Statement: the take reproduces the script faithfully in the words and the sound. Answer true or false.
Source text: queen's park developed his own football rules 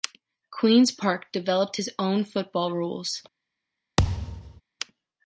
false